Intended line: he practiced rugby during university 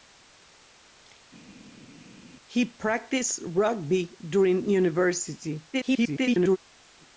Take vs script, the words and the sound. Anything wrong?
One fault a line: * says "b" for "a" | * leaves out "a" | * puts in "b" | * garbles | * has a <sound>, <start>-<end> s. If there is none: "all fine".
* garbles